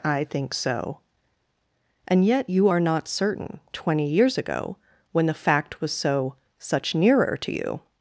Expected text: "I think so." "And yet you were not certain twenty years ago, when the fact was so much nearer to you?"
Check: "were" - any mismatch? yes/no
yes